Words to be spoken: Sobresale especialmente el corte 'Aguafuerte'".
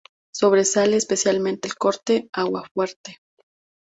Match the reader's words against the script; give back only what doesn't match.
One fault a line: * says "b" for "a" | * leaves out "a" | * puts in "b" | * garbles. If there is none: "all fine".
all fine